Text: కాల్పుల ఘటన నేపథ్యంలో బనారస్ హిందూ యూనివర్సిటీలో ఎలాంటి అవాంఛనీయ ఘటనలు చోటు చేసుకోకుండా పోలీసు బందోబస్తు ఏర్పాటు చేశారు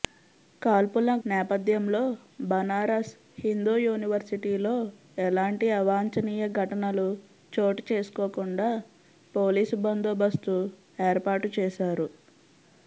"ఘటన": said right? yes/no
no